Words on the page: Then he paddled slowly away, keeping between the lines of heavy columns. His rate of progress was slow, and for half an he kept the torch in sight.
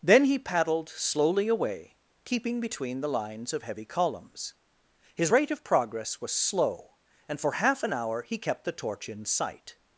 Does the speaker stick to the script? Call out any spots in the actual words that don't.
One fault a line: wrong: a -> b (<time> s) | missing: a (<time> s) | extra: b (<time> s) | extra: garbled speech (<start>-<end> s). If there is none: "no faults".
extra: hour (7.9 s)